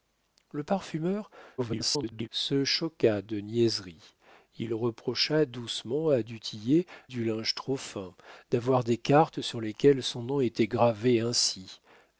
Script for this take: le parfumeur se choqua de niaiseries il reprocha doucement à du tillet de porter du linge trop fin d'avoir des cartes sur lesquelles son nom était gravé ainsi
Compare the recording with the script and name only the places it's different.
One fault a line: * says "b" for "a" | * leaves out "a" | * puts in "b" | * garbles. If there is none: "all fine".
* garbles
* leaves out "de porter"